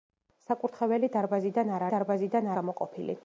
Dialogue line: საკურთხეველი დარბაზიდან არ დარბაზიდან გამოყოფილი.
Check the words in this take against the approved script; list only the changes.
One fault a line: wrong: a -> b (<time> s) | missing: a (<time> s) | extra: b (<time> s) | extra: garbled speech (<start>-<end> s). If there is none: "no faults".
no faults